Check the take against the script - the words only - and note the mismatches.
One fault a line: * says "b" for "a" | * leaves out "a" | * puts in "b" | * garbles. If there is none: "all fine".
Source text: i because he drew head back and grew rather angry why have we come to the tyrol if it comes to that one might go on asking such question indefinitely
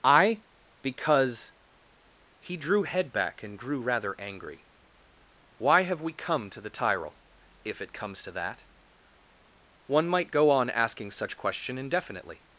all fine